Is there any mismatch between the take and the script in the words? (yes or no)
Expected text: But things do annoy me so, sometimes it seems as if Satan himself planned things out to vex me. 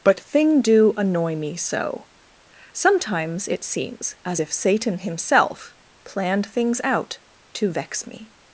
yes